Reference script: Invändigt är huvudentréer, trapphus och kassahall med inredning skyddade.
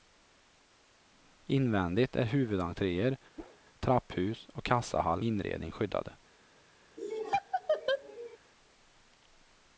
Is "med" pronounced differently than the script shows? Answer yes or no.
yes